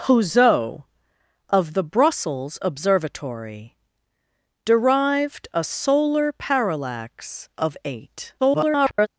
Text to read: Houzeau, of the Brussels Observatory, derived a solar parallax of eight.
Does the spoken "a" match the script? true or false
true